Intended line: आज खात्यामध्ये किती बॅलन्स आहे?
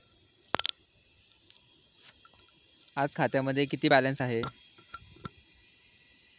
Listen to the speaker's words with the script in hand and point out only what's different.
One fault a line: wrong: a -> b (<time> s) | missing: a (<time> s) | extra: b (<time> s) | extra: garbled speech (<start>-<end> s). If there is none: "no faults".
no faults